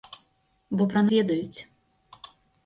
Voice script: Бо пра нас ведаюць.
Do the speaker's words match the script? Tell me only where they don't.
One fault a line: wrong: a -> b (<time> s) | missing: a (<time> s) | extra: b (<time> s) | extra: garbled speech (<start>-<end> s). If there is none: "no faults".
missing: нас (1.0 s)